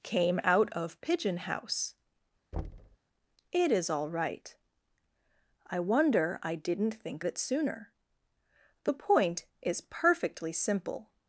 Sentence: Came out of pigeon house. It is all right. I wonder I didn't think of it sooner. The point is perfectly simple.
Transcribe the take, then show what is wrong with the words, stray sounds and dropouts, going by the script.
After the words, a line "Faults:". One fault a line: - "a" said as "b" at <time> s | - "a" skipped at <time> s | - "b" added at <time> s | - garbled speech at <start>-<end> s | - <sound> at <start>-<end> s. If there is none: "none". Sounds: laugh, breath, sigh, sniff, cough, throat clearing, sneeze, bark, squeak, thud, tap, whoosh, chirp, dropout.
Came out of pigeon house. It is all right. I wonder I didn't think it sooner. The point is perfectly simple.
Faults:
- thud at 2.5-3.0 s
- "of" skipped at 7.2 s